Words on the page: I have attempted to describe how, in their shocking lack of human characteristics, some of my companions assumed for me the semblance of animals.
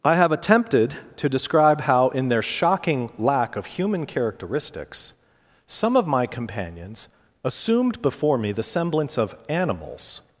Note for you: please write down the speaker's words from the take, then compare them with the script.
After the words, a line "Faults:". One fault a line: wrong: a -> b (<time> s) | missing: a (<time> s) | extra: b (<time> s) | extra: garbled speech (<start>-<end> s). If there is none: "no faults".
I have attempted to describe how, in their shocking lack of human characteristics, some of my companions assumed before me the semblance of animals.
Faults:
wrong: for -> before (8.0 s)